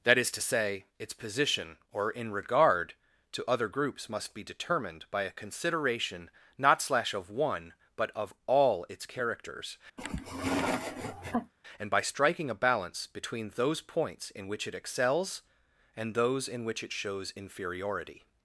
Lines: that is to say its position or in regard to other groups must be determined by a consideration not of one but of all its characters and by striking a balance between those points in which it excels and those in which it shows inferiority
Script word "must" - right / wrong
right